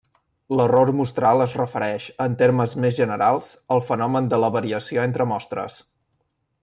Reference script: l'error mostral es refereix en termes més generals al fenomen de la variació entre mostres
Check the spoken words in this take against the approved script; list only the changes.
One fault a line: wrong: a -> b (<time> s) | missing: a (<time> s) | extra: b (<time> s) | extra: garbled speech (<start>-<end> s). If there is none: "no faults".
no faults